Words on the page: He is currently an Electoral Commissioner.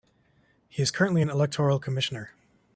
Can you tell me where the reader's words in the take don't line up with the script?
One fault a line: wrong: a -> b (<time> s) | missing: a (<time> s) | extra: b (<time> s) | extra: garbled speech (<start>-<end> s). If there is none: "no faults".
no faults